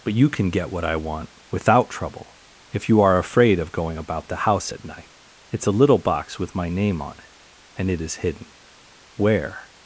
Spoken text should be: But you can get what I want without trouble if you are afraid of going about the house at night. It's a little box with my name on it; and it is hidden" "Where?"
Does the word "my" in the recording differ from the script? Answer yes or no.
no